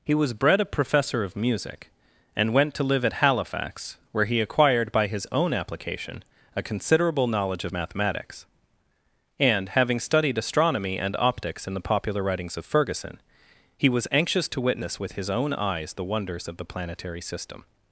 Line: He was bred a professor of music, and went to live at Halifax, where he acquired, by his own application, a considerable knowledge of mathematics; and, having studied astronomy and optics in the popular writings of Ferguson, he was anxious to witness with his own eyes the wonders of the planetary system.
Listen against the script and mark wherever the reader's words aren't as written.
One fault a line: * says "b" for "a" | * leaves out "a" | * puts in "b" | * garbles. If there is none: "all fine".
all fine